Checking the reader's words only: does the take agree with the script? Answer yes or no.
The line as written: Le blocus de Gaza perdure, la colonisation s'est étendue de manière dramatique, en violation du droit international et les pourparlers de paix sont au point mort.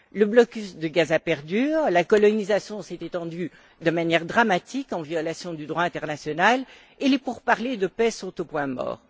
yes